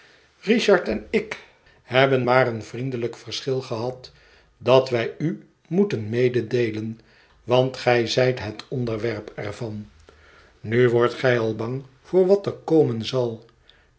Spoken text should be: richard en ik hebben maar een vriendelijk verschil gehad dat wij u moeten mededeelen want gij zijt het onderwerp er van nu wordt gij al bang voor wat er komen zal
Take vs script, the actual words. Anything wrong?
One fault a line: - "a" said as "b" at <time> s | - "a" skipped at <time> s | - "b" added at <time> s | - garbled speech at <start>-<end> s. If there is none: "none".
none